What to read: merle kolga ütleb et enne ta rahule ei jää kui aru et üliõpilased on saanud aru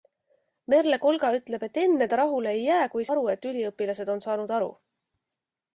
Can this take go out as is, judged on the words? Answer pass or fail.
pass